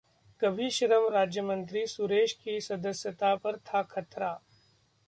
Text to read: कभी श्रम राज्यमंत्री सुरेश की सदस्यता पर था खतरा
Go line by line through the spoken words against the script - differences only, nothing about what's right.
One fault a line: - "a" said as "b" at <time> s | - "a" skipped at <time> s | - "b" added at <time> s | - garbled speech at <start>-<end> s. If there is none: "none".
none